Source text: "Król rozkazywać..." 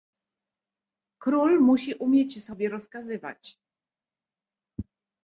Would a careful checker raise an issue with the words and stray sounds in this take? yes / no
yes